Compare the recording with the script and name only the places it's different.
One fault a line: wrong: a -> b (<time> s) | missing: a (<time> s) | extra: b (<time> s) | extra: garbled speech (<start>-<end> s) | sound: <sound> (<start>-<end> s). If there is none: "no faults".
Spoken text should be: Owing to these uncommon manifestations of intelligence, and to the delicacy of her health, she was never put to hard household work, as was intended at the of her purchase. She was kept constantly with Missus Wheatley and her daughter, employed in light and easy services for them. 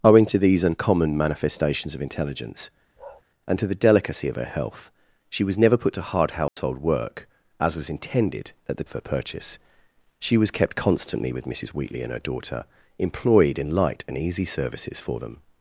sound: bark (3.0-3.2 s)
sound: dropout (6.5-6.6 s)